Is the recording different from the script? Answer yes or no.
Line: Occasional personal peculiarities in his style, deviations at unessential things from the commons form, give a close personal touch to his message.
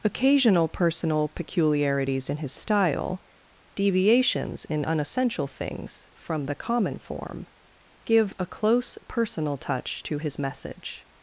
yes